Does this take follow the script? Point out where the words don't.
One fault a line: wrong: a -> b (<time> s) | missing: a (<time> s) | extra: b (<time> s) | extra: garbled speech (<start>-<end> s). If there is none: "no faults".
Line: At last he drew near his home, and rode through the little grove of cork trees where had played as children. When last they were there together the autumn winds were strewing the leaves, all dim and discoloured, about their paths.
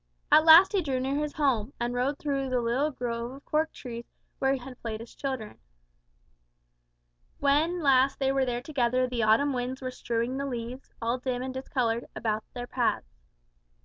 no faults